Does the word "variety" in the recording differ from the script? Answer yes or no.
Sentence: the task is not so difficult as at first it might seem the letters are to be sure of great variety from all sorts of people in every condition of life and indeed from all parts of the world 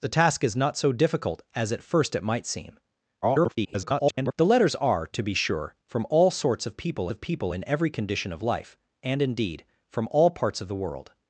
yes